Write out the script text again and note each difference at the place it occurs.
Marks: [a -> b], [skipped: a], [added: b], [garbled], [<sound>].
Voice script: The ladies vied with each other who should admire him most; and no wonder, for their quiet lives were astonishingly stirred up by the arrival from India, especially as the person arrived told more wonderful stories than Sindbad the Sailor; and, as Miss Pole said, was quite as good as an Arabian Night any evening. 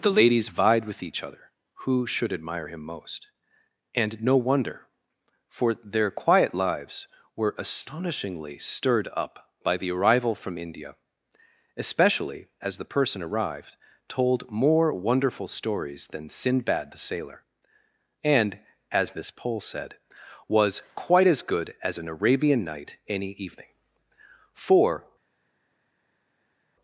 The ladies vied with each other who should admire him most; and no wonder, for their quiet lives were astonishingly stirred up by the arrival from India, especially as the person arrived told more wonderful stories than Sindbad the Sailor; and, as Miss Pole said, was quite as good as an Arabian Night any evening. [added: For]